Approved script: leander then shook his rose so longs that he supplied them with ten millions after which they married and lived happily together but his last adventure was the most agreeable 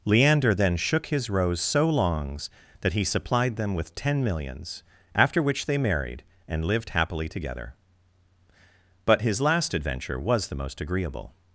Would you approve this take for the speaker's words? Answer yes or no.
yes